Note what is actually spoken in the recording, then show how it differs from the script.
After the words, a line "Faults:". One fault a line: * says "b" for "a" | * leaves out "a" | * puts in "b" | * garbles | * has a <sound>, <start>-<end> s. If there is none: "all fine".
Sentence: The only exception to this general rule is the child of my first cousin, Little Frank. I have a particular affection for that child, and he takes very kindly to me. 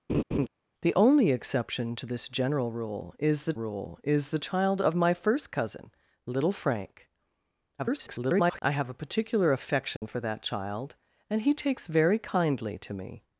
The only exception to this general rule is the rule is the child of my first cousin, Little Frank. [garbled] I have a particular affection for that child, and he takes very kindly to me.
Faults:
* has a laugh, 0.1-0.5 s
* puts in "rule is the"
* garbles
* has a dropout, 10.0-10.0 s